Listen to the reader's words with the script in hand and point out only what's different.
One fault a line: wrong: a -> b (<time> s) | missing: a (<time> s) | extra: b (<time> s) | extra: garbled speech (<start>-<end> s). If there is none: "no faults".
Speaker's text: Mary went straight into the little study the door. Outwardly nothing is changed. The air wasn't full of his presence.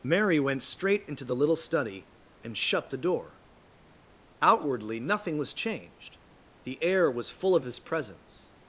extra: and shut (2.4 s)
wrong: is -> was (5.4 s)
wrong: wasn't -> was (7.1 s)